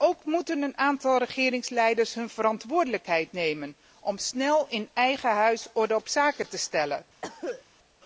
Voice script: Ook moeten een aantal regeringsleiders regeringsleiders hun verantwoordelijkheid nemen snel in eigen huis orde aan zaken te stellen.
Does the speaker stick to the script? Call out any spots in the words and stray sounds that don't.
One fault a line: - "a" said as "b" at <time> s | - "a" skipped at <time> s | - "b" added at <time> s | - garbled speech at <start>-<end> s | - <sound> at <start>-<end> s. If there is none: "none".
- "regeringsleiders" skipped at 2.1 s
- "om" added at 4.0 s
- "aan" said as "op" at 6.0 s
- cough at 7.2-7.6 s